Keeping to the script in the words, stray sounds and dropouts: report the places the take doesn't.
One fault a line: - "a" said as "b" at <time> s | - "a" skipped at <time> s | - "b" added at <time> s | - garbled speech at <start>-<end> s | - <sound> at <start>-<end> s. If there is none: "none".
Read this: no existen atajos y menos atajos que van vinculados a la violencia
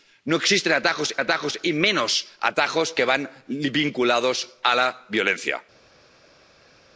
- "atajos" added at 1.2 s